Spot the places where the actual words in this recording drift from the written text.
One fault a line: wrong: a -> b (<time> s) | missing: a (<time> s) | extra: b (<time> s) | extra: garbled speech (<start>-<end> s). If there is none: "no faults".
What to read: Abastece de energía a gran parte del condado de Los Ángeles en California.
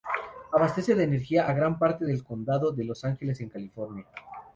no faults